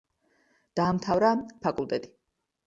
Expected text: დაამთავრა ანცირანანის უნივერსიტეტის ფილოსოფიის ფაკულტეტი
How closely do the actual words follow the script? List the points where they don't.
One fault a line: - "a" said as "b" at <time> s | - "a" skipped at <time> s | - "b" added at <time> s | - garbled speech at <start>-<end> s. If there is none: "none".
- "ანცირანანის უნივერსიტეტის ფილოსოფიის" skipped at 1.3 s